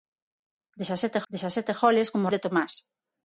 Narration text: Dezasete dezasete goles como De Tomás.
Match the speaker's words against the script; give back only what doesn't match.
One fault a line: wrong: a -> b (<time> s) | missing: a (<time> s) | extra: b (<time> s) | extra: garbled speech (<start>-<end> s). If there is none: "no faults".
no faults